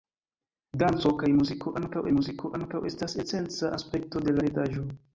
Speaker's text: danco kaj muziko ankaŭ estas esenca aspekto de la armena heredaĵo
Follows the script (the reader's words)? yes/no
no